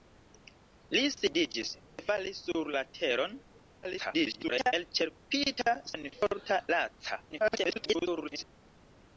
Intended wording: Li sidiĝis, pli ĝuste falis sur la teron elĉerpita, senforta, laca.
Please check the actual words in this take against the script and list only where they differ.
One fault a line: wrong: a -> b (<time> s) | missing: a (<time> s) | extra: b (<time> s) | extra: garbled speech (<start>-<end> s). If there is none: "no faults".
missing: pli ĝuste (1.7 s)
extra: garbled speech (3.8-4.7 s)
extra: garbled speech (7.3-8.4 s)